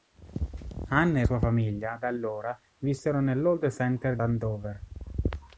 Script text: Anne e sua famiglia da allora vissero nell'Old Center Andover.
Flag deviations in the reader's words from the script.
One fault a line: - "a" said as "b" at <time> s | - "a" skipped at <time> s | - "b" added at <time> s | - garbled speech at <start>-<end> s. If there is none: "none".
none